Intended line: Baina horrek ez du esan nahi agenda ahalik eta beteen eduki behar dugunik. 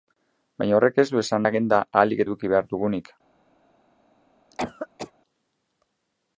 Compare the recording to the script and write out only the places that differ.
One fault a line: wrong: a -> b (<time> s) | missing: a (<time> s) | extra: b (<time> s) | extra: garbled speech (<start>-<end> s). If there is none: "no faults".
missing: nahi (1.4 s)
missing: eta beteen (2.3 s)